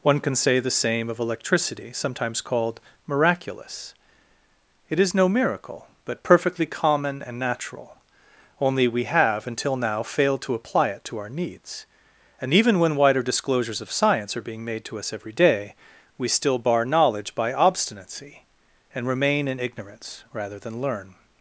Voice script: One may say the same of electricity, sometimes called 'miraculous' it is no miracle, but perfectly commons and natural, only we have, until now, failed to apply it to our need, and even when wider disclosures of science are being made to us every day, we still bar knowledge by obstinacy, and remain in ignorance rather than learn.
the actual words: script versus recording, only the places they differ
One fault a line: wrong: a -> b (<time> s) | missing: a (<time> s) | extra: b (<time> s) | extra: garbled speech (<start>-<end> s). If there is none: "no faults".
wrong: may -> can (0.2 s)
wrong: commons -> common (6.7 s)
wrong: need -> needs (11.3 s)